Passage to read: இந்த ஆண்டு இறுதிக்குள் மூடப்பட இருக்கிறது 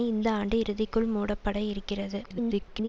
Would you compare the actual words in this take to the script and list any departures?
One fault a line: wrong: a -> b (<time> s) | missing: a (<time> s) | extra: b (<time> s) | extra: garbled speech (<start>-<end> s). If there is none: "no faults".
extra: garbled speech (2.2-2.9 s)